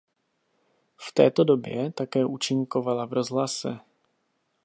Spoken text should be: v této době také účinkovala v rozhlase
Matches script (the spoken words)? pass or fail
pass